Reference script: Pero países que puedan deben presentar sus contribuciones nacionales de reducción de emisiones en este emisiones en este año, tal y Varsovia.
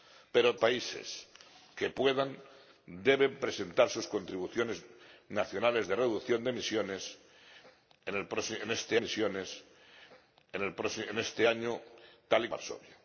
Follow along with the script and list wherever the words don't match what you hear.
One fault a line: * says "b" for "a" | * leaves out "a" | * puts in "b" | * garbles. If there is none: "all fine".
all fine